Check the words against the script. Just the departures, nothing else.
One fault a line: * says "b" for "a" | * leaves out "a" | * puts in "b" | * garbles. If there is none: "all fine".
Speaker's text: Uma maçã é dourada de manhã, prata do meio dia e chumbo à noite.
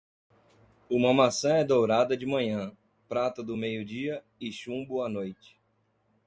all fine